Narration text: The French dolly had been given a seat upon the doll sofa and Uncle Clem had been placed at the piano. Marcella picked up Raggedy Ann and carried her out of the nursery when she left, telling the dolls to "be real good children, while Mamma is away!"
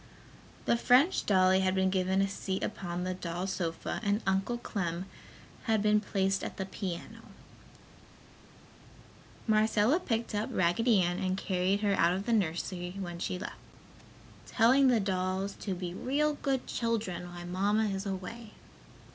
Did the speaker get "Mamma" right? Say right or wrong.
right